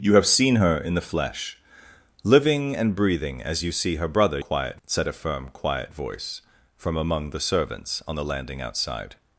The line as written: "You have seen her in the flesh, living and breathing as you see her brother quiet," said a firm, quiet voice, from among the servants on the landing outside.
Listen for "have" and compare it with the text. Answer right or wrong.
right